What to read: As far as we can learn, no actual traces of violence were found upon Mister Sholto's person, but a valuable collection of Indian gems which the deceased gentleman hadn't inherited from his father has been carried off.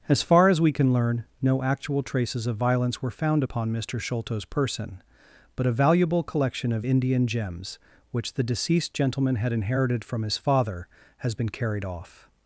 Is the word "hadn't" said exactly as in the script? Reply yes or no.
no